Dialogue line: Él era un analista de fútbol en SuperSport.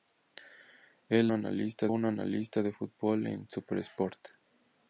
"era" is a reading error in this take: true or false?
true